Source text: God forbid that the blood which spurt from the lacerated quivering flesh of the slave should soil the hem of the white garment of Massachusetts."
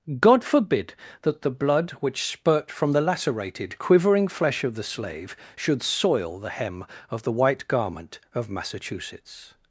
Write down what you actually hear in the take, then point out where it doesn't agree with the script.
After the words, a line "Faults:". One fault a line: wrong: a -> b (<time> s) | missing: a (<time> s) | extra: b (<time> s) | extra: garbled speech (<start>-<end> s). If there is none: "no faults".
God forbid that the blood which spurt from the lacerated quivering flesh of the slave should soil the hem of the white garment of Massachusetts."
Faults:
no faults